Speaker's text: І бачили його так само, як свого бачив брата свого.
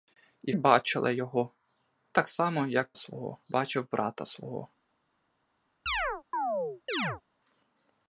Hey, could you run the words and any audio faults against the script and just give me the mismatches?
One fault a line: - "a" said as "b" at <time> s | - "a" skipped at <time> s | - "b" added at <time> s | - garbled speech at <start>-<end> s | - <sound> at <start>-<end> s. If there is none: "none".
- chirp at 5.9-7.2 s